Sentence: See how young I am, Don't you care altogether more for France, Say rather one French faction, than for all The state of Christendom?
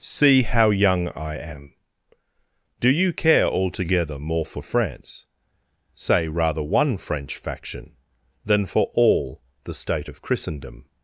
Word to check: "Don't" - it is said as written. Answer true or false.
false